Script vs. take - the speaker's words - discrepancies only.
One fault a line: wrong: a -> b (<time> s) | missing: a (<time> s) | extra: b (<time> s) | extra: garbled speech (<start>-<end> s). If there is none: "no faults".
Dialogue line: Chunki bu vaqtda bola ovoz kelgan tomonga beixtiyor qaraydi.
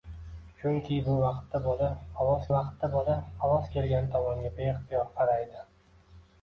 extra: vaqtda bola ovoz (2.6 s)